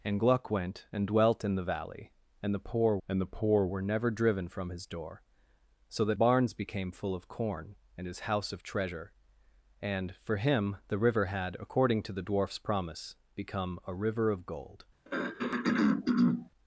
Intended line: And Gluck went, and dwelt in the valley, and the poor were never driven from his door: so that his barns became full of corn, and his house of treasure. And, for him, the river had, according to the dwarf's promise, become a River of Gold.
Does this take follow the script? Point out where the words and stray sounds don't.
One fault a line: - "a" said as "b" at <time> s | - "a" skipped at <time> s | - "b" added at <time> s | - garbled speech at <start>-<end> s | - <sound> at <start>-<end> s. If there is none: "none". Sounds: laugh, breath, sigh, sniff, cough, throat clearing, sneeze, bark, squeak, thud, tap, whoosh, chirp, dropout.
- "and the poor" added at 3.1 s
- "his" skipped at 6.2 s
- throat clearing at 15.0-16.5 s